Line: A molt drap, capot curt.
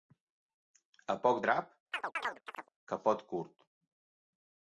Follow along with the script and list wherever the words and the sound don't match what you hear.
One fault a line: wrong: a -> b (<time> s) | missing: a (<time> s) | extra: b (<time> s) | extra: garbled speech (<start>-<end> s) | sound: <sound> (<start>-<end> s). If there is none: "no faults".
wrong: molt -> poc (1.2 s)
sound: chirp (1.9-2.7 s)